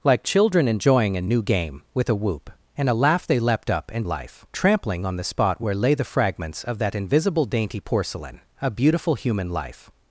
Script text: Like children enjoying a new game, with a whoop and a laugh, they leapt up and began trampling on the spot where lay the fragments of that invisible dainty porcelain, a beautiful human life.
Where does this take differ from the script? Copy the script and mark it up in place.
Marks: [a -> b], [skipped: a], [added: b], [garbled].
Like children enjoying a new game, with a whoop and a laugh, they leapt up and [began -> life] trampling on the spot where lay the fragments of that invisible dainty porcelain, a beautiful human life.